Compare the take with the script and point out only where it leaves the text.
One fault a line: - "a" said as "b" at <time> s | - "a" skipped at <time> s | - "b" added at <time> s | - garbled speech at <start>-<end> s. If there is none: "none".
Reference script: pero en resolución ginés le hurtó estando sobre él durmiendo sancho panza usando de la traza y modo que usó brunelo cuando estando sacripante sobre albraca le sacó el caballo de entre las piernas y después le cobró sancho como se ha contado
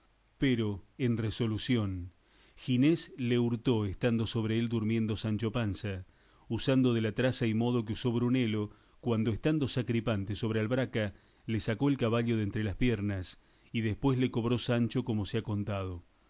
none